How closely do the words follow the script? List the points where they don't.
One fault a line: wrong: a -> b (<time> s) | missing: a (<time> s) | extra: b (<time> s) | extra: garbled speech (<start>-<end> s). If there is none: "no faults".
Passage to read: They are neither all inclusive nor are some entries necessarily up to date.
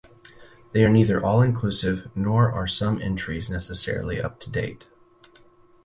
no faults